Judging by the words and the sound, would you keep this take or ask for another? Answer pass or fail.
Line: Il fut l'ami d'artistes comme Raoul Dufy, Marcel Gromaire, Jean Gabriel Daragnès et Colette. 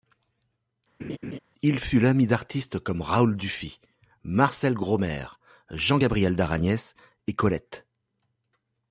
fail